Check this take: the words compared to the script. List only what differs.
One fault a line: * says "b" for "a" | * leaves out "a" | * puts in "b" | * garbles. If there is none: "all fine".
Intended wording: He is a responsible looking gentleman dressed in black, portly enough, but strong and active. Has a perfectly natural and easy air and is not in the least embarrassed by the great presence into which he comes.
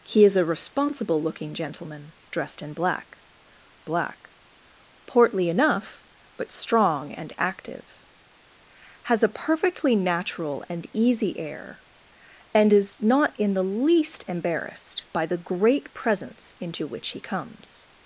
* puts in "black"